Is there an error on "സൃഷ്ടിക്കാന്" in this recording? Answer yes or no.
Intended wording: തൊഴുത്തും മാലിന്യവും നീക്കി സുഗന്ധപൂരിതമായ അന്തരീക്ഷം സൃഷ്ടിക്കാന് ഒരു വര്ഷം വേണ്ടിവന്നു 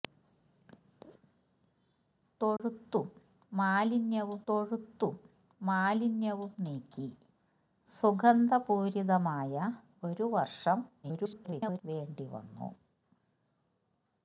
yes